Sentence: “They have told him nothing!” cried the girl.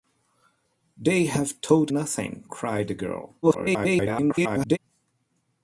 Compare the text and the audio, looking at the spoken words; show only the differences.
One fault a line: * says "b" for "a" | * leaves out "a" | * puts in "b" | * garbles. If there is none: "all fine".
* leaves out "him"
* garbles